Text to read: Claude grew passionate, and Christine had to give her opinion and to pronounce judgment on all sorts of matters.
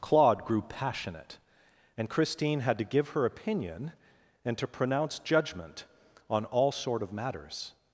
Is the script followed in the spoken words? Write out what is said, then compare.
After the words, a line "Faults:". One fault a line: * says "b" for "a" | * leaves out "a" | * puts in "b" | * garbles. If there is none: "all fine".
Claude grew passionate, and Christine had to give her opinion and to pronounce judgment on all sort of matters.
Faults:
* says "sort" for "sorts"